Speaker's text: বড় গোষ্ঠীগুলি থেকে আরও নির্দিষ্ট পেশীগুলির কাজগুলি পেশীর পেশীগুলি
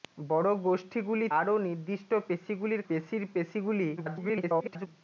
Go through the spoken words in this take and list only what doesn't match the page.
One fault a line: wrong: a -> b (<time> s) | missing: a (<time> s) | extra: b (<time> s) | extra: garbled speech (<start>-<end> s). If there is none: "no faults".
missing: থেকে (1.3 s)
missing: কাজগুলি (2.8 s)
extra: garbled speech (4.0-4.9 s)